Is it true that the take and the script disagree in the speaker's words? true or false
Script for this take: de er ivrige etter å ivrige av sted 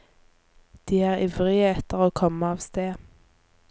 true